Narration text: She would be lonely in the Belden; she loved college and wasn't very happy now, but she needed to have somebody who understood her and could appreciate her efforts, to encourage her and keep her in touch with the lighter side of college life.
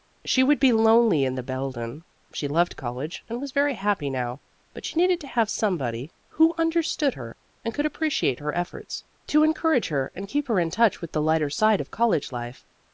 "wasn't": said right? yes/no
no